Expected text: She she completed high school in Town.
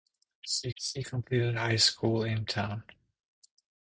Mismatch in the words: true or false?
false